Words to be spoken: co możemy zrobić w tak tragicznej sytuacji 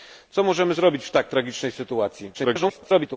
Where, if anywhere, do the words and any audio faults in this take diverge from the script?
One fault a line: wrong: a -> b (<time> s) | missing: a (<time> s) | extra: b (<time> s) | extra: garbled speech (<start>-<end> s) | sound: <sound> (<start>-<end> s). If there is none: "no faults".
extra: garbled speech (2.3-3.2 s)